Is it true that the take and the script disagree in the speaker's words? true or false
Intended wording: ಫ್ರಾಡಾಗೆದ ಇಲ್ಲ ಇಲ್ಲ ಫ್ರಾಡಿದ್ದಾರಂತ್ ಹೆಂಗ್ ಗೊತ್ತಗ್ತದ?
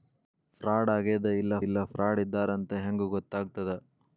false